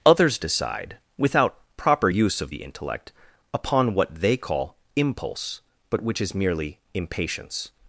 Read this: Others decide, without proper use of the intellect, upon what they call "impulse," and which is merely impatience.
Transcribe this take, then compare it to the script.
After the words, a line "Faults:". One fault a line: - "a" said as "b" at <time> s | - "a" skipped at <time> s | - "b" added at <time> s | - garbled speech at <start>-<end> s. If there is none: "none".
Others decide, without proper use of the intellect, upon what they call "impulse," but which is merely impatience.
Faults:
- "and" said as "but" at 5.9 s